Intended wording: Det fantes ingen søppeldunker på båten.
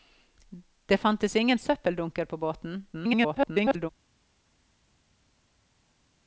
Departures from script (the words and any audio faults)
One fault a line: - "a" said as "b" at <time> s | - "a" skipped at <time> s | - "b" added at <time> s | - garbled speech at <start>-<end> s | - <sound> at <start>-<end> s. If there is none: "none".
- garbled speech at 2.9-3.9 s